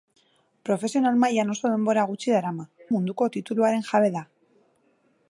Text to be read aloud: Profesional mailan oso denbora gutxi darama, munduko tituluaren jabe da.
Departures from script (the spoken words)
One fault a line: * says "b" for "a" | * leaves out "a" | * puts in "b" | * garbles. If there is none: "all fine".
all fine